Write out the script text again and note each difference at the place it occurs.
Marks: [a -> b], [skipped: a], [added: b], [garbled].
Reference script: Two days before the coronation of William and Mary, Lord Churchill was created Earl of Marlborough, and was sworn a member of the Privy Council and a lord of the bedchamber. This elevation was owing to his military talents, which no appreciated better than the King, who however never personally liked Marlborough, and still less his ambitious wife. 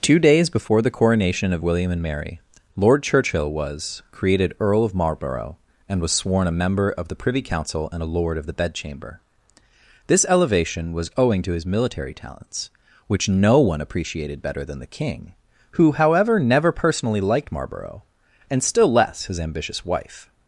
Two days before the coronation of William and Mary, Lord Churchill was created Earl of Marlborough, and was sworn a member of the Privy Council and a lord of the bedchamber. This elevation was owing to his military talents, which no [added: one] appreciated better than the King, who however never personally liked Marlborough, and still less his ambitious wife.